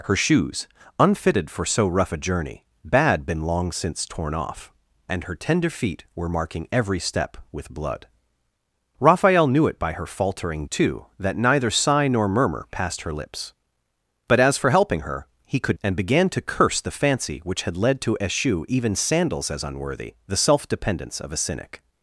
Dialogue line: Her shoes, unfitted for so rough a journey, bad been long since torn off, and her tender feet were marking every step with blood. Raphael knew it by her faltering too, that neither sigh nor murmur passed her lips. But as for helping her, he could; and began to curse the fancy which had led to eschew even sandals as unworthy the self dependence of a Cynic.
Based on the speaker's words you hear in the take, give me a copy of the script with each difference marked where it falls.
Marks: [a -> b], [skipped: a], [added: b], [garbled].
Her shoes, unfitted for so rough a journey, bad been long since torn off, and her tender feet were marking every step with blood. Raphael knew it by her faltering too, that neither sigh nor murmur passed her lips. But as for helping her, he could; and began to curse the fancy which had led to eschew even sandals as unworthy the self dependence of a Cynic.